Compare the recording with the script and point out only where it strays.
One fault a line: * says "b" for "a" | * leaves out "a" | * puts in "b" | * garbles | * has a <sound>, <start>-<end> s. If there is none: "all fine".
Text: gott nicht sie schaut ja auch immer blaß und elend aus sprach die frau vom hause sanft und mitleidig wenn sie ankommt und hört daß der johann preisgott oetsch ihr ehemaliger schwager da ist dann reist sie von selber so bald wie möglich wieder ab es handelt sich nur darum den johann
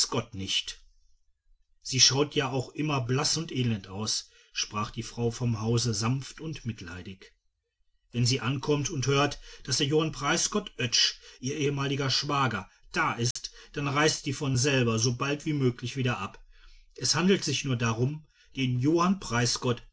* has a dropout, 13.3-13.4 s